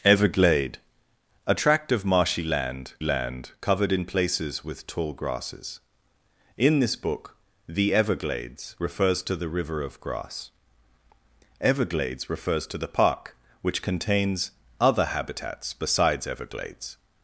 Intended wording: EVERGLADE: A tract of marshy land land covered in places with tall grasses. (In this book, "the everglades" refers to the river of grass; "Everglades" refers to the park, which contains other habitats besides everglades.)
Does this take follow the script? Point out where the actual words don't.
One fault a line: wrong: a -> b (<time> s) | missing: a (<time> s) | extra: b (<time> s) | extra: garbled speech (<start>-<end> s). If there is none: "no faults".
no faults